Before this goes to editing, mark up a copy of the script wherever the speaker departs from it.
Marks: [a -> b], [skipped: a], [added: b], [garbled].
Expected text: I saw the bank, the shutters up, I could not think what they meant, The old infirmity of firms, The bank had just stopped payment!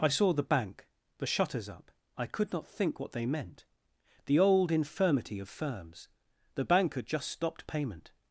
I saw the bank, the shutters up, I could not think what they meant, The old infirmity of firms, The bank had just stopped payment!